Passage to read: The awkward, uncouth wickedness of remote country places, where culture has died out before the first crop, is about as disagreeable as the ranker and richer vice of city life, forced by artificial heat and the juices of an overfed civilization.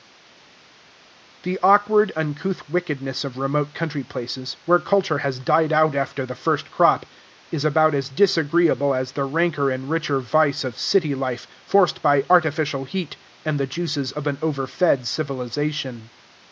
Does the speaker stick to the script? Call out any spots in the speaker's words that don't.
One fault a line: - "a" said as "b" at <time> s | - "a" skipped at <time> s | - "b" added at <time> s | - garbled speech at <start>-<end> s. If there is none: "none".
- "before" said as "after" at 5.9 s